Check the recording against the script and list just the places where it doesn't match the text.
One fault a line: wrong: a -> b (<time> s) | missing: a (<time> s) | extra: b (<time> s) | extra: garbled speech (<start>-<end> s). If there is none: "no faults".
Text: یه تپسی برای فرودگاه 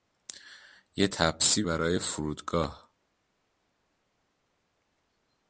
no faults